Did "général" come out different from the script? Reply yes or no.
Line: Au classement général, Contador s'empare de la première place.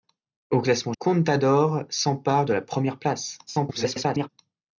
yes